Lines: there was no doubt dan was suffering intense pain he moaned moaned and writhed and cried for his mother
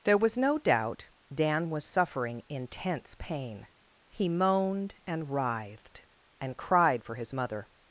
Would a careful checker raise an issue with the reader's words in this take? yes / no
yes